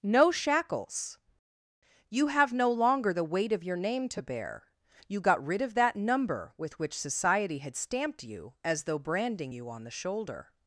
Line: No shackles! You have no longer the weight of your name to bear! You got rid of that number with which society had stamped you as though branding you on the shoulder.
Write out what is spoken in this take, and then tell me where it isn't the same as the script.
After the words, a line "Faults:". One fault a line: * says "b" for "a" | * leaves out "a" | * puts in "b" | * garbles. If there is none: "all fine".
No shackles! You have no longer the weight of your name to bear! You got rid of that number with which society had stamped you as though branding you on the shoulder.
Faults:
all fine